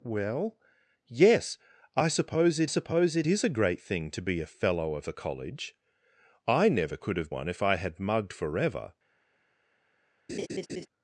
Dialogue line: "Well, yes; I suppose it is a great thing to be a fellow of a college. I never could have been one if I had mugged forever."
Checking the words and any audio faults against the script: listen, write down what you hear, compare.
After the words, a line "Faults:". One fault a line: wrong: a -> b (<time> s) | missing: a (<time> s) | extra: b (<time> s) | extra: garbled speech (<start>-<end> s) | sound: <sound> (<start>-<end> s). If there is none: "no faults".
"Well, yes; I suppose it suppose it is a great thing to be a fellow of a college. I never could have one if I had mugged forever."
Faults:
extra: suppose it (2.6 s)
missing: been (7.3 s)
sound: laugh (10.3-10.9 s)